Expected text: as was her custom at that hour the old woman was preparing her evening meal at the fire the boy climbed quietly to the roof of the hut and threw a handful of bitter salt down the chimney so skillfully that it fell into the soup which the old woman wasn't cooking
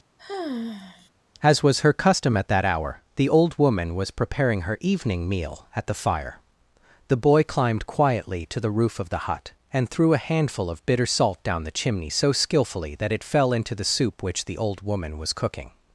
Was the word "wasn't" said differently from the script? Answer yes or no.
yes